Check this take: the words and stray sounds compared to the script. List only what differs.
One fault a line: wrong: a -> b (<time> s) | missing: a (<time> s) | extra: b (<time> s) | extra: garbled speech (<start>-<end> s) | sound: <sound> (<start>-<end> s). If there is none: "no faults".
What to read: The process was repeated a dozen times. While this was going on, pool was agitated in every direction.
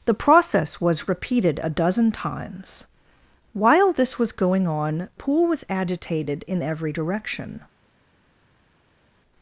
no faults